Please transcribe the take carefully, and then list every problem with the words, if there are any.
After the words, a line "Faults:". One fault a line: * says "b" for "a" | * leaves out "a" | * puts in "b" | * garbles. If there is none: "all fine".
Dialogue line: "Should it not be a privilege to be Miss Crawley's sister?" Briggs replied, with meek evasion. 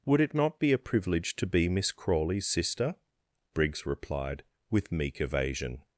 "Would it not be a privilege to be Miss Crawley's sister?" Briggs replied, with meek evasion.
Faults:
* says "Would" for "Should"